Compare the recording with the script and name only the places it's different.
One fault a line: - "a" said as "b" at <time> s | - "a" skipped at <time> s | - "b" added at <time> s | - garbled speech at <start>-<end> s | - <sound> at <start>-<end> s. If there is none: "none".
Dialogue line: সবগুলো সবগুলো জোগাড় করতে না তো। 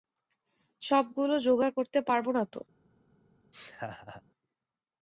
- "সবগুলো" skipped at 1.4 s
- "পারব" added at 2.0 s
- laugh at 3.5-4.2 s